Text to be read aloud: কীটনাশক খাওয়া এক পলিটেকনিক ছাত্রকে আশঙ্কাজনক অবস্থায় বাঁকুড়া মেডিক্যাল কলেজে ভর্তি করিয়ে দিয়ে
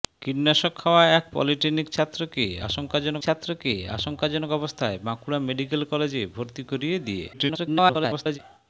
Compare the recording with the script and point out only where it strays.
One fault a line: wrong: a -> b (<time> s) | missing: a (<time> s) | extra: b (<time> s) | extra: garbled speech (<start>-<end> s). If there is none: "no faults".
extra: ছাত্রকে আশঙ্কাজনক (3.2 s)
extra: garbled speech (7.3-8.4 s)